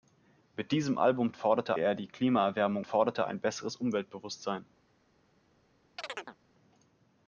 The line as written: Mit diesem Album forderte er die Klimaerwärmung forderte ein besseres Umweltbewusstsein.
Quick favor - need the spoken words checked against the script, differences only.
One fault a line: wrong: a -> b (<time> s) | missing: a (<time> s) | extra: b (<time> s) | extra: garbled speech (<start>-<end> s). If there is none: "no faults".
no faults